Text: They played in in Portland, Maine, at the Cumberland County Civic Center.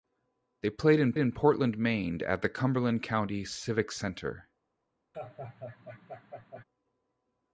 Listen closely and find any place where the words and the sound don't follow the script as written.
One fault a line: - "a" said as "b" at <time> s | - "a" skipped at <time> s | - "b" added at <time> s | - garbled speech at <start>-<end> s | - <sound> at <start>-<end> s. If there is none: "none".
- laugh at 5.1-6.6 s